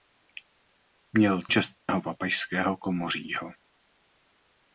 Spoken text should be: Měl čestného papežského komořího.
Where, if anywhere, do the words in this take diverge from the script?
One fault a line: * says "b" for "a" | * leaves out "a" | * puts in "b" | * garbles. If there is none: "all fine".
all fine